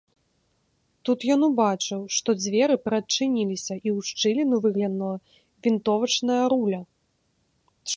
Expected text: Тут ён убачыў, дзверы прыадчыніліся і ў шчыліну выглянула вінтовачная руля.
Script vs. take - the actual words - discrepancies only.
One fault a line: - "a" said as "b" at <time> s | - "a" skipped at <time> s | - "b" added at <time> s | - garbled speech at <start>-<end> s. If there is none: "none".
- "што" added at 2.1 s